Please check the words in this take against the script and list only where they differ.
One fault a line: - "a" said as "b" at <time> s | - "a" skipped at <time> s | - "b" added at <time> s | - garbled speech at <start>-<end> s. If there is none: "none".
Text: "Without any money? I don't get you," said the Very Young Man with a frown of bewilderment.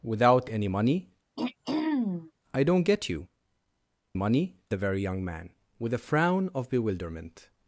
- "said" said as "money" at 4.1 s